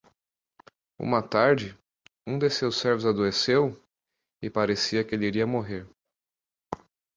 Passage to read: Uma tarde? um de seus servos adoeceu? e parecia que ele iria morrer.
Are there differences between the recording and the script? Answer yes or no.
no